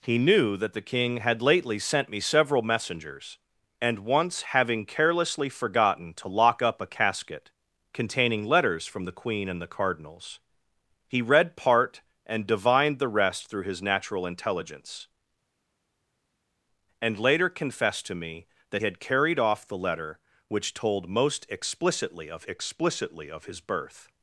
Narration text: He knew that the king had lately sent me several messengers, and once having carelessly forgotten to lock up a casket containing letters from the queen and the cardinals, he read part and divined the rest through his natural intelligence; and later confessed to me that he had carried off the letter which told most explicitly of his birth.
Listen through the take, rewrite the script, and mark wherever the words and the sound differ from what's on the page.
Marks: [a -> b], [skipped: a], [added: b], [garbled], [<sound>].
He knew that the king had lately sent me several messengers, and once having carelessly forgotten to lock up a casket containing letters from the queen and the cardinals, he read part and divined the rest through his natural intelligence; and later confessed to me that [skipped: he] had carried off the letter which told most explicitly of [added: explicitly of] his birth.